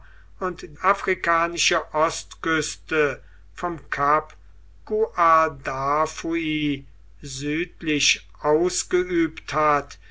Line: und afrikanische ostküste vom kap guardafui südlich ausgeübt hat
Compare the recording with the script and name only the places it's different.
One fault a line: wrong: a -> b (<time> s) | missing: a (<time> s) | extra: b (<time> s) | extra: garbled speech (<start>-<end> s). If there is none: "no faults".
no faults